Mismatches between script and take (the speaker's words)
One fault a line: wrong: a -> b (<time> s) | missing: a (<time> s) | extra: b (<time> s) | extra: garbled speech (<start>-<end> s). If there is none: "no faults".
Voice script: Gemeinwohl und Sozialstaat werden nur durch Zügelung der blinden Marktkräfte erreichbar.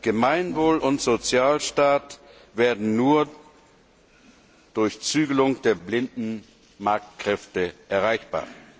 no faults